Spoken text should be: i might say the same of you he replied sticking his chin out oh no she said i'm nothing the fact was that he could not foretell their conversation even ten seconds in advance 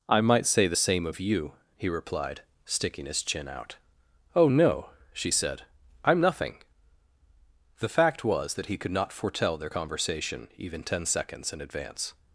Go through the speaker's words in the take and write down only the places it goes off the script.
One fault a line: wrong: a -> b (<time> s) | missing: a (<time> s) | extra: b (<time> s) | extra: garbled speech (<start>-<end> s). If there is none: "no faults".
no faults